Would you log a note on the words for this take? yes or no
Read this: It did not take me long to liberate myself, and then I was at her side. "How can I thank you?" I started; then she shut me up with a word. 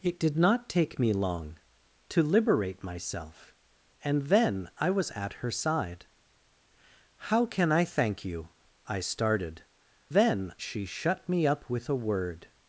no